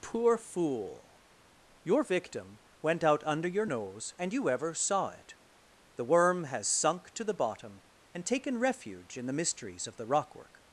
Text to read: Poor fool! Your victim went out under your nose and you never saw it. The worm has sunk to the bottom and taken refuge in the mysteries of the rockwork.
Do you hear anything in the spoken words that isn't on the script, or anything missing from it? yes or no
yes